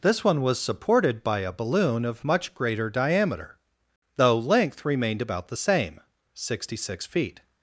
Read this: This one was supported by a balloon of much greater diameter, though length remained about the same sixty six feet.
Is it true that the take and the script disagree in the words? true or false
false